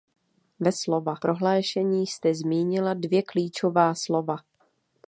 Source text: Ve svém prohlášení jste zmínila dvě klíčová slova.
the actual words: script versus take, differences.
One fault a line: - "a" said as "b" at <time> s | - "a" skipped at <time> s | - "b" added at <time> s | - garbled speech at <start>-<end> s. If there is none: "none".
- "svém" said as "slova" at 0.7 s